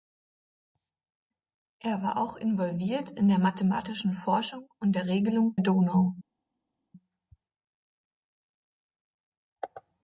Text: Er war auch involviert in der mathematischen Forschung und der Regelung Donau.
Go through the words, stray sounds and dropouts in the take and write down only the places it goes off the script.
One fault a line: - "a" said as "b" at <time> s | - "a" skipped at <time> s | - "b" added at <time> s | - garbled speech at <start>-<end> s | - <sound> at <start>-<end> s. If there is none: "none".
none